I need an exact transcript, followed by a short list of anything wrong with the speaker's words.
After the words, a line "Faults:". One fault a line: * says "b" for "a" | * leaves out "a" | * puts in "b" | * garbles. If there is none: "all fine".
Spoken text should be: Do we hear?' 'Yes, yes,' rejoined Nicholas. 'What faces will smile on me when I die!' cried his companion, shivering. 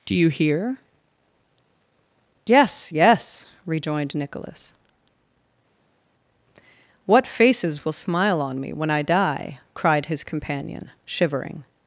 Do you hear?' 'Yes, yes,' rejoined Nicholas. 'What faces will smile on me when I die!' cried his companion, shivering.
Faults:
* says "you" for "we"